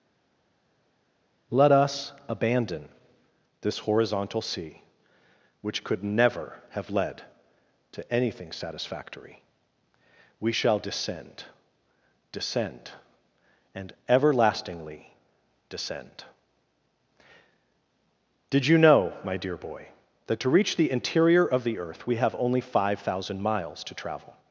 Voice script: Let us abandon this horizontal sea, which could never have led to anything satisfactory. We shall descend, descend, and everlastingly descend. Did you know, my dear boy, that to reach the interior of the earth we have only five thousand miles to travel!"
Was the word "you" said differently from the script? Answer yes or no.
no